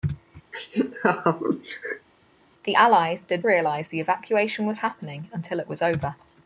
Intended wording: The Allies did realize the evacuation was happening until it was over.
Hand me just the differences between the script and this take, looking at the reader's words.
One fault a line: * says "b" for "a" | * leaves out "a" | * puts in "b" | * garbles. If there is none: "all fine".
all fine